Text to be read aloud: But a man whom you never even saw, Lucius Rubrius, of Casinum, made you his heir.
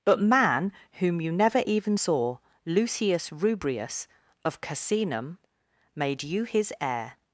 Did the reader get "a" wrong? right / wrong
wrong